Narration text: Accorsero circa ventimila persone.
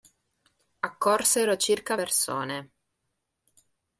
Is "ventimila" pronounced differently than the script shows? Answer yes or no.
yes